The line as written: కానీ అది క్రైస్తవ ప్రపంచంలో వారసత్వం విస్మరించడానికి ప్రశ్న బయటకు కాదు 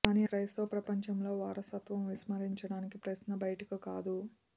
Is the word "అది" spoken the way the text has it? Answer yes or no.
no